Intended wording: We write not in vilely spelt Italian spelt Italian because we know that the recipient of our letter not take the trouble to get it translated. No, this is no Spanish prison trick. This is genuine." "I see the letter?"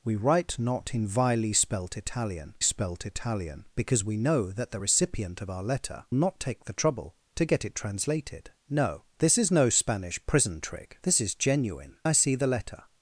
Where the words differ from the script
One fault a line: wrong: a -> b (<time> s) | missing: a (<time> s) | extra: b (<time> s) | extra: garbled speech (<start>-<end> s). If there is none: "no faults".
no faults